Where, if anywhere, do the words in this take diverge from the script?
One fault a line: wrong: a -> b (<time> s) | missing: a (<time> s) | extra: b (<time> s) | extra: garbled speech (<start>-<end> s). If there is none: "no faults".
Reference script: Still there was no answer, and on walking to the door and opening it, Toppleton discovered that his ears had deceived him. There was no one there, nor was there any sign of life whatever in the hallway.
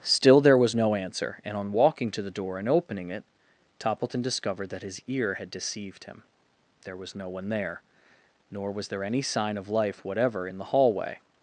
wrong: ears -> ear (5.1 s)